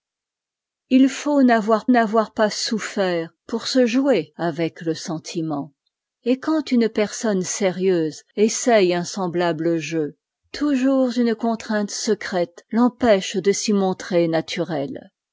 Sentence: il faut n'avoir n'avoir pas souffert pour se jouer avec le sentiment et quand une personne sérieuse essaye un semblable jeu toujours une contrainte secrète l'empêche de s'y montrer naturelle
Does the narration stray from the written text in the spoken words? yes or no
no